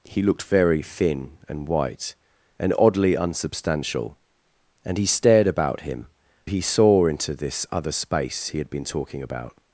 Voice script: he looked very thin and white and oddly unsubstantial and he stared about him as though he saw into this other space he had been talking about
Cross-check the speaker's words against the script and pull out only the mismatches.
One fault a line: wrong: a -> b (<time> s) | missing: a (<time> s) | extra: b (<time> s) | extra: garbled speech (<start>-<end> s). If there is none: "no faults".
missing: as though (6.1 s)